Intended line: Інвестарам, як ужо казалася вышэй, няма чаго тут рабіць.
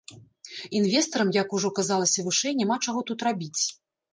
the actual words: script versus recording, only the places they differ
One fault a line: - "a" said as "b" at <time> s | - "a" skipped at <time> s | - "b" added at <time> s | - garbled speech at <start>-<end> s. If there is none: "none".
none